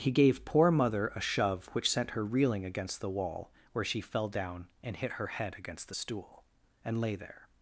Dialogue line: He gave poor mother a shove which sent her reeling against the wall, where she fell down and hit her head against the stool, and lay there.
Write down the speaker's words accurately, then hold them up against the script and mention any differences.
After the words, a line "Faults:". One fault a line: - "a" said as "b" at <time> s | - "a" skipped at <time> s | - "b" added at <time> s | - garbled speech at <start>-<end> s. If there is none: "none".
He gave poor mother a shove which sent her reeling against the wall, where she fell down and hit her head against the stool, and lay there.
Faults:
none